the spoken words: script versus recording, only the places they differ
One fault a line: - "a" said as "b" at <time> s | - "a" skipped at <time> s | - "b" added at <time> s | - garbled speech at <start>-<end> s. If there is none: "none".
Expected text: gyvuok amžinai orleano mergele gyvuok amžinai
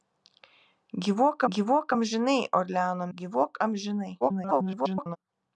- "gyvuok" added at 1.5 s
- "mergele" skipped at 3.0 s
- garbled speech at 4.2-5.2 s